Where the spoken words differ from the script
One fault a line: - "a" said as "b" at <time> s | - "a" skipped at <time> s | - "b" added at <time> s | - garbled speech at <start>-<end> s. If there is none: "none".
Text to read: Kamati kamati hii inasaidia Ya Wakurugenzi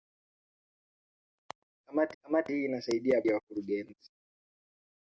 none